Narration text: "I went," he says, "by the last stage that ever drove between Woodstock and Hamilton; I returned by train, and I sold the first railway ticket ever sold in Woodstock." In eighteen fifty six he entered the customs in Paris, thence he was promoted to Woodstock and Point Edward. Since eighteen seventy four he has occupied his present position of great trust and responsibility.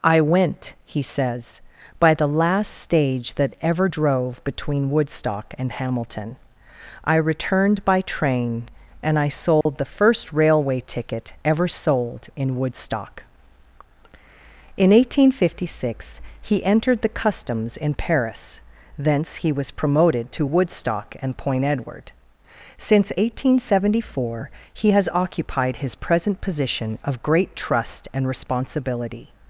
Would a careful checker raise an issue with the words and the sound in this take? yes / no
yes